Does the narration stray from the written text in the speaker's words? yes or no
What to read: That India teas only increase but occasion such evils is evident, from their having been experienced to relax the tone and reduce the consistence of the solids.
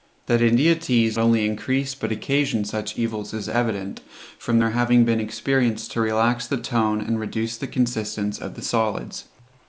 no